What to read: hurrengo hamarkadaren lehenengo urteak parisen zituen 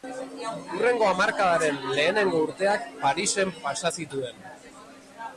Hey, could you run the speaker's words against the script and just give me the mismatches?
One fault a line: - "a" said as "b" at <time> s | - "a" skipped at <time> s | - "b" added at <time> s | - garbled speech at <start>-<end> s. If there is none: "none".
- "pasa" added at 3.6 s